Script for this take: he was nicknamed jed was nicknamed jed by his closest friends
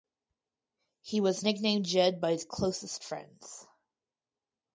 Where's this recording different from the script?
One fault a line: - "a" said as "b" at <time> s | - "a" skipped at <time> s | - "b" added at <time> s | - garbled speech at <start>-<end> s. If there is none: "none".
- "was nicknamed jed" skipped at 2.2 s